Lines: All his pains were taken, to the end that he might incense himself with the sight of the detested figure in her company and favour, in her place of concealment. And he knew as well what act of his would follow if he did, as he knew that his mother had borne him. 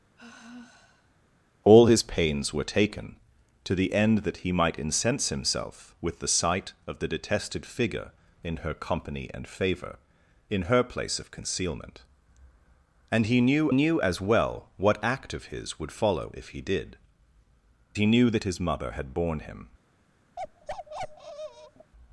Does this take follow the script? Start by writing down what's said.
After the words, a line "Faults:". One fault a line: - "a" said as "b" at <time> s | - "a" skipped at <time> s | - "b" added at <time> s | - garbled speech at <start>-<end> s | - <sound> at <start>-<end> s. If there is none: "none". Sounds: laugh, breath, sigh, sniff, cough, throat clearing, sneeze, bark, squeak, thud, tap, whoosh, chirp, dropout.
All his pains were taken, to the end that he might incense himself with the sight of the detested figure in her company and favour, in her place of concealment. And he knew knew as well what act of his would follow if he did, he knew that his mother had borne him.
Faults:
- sigh at 0.2-1.3 s
- "knew" added at 13.7 s
- "as" skipped at 17.0 s
- bark at 20.4-21.9 s